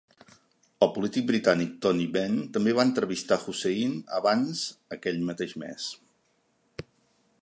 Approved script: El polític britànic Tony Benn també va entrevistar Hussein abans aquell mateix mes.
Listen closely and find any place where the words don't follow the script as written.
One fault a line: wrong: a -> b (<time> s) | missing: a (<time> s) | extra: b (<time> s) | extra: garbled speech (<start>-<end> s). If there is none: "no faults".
no faults